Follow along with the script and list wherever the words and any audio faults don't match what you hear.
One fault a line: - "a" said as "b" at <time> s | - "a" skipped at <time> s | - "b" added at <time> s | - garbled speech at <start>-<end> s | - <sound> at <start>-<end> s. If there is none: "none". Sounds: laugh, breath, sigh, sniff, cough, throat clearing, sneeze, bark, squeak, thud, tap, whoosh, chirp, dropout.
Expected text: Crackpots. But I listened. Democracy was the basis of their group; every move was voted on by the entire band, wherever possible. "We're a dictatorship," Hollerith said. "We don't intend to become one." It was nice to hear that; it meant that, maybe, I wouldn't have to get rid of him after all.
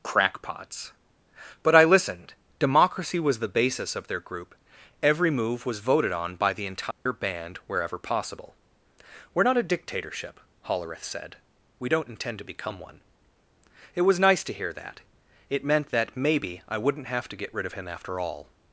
- dropout at 6.9-7.1 s
- "not" added at 9.4 s